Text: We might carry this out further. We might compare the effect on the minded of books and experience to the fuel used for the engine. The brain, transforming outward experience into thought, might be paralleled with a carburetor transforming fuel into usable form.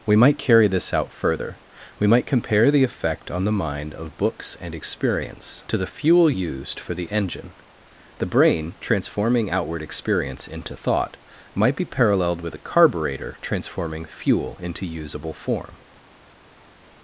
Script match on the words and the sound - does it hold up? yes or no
no